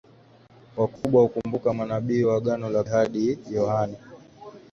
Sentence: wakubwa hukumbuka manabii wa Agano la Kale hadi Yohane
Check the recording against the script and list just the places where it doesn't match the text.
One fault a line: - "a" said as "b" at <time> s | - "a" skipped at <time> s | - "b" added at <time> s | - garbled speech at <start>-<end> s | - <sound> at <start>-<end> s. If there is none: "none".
- dropout at 1.0-1.0 s
- "Kale" skipped at 2.8 s